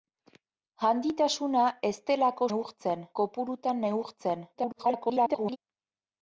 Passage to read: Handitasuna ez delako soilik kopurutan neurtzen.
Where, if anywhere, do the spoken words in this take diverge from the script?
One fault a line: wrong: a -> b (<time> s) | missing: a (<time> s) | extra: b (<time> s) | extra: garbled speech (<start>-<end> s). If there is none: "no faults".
wrong: soilik -> neurtzen (2.5 s)
extra: garbled speech (4.5-5.6 s)